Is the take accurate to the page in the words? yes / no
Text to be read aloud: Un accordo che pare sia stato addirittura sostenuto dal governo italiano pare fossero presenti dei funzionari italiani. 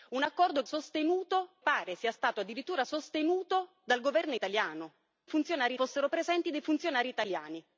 no